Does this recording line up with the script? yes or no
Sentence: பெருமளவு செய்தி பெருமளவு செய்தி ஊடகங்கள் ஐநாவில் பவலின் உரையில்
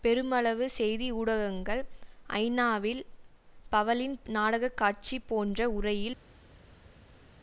no